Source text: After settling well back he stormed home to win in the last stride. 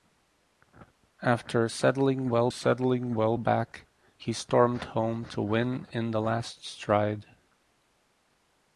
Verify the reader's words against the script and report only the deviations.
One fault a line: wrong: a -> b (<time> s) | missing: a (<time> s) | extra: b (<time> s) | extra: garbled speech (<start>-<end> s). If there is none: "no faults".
extra: settling well (2.5 s)